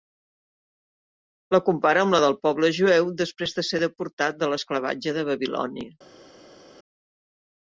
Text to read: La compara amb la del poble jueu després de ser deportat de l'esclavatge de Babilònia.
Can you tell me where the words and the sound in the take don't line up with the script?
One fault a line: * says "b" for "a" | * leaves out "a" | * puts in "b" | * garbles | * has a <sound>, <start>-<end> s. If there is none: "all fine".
all fine